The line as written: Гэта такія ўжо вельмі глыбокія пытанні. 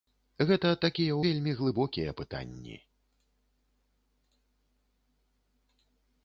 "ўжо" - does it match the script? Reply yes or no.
no